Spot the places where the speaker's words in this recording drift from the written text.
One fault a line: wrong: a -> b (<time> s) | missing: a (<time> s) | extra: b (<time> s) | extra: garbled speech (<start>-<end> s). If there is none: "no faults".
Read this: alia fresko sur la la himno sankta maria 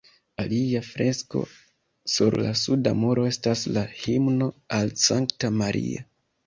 extra: suda muro estas (2.6 s)
extra: al (4.8 s)